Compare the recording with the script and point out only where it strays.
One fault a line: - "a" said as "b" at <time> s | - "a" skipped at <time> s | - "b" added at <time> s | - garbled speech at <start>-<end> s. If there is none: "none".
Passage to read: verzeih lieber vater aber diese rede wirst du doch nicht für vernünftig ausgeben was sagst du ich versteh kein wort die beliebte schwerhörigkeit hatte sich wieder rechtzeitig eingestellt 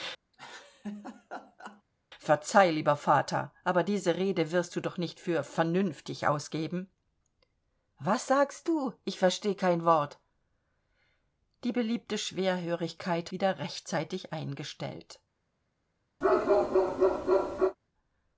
- "hatte sich" skipped at 13.3 s